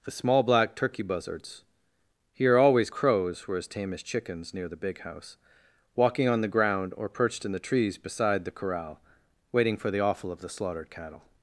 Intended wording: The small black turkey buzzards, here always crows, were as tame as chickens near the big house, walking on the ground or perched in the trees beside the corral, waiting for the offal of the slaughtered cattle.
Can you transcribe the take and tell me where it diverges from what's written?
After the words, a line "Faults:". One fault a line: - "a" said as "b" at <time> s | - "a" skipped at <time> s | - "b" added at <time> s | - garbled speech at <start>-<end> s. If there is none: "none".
The small black turkey buzzards, here always crows, were as tame as chickens near the big house, walking on the ground or perched in the trees beside the corral, waiting for the offal of the slaughtered cattle.
Faults:
none